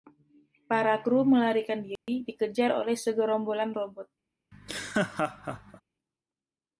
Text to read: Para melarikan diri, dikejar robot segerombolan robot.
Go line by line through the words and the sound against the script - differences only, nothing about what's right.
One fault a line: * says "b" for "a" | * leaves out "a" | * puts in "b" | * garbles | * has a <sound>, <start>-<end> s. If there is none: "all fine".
* puts in "kru"
* has a dropout, 2.0-2.1 s
* says "oleh" for "robot"
* has a laugh, 4.5-5.8 s